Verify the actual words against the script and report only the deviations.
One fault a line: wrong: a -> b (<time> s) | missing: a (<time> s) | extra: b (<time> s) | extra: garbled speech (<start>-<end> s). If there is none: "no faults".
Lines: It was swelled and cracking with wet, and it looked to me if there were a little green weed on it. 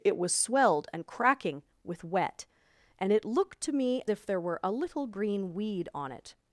no faults